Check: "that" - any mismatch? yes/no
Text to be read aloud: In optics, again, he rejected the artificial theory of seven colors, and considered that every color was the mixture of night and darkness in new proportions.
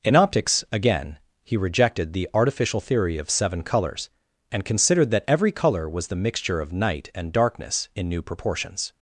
no